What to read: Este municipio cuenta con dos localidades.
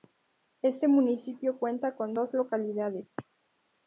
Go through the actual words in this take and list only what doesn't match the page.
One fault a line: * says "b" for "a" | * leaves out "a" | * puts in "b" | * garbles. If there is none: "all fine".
all fine